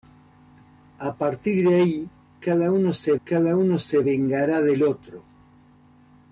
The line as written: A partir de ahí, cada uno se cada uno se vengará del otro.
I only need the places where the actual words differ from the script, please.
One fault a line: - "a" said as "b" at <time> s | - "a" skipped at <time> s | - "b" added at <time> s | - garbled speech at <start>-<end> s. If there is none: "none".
none